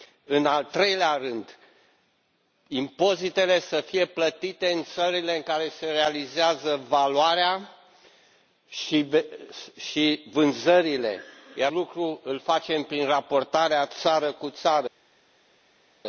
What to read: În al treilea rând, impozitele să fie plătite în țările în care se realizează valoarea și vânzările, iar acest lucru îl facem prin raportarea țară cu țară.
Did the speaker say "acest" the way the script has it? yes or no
no